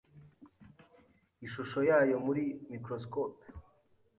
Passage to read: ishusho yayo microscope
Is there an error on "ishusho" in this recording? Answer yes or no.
no